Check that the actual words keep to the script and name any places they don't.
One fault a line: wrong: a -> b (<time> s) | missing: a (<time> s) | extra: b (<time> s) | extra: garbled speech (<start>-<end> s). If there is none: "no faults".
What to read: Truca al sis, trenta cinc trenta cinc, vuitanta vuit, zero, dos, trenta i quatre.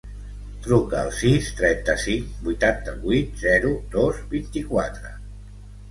missing: trenta cinc (2.3 s)
wrong: trenta -> vint (4.4 s)